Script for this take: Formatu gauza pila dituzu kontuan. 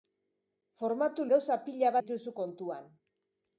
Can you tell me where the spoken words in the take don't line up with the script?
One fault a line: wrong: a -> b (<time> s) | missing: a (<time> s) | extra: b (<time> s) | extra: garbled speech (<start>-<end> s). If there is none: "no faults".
no faults